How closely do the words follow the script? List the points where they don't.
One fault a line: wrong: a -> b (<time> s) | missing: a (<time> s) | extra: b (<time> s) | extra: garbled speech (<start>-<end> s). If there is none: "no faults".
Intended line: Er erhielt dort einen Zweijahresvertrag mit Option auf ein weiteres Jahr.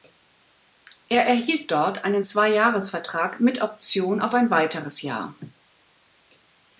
no faults